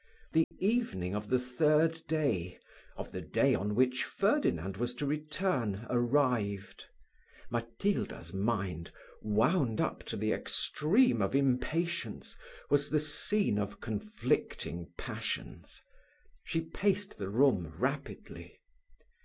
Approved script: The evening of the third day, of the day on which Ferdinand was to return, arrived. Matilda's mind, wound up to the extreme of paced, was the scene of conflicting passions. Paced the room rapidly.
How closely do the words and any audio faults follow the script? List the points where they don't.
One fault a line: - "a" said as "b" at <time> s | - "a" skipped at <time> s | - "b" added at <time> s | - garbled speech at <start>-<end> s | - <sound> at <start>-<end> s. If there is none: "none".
- dropout at 0.4-0.5 s
- "paced" said as "impatience" at 11.3 s
- "She" added at 16.4 s